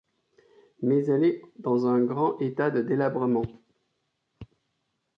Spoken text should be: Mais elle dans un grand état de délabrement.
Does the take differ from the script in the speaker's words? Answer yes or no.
yes